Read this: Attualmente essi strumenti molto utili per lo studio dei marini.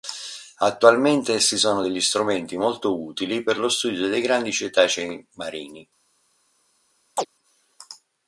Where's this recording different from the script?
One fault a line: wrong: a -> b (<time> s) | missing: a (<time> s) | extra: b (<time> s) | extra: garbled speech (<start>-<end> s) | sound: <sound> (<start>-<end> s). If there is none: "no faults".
extra: sono degli (1.6 s)
extra: grandi cetacei (4.2 s)
sound: chirp (7.2-7.3 s)